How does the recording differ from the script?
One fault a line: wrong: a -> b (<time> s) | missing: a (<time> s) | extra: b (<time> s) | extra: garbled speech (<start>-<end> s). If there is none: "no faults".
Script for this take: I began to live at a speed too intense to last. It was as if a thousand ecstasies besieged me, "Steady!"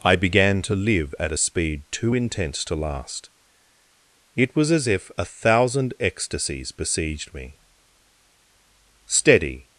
no faults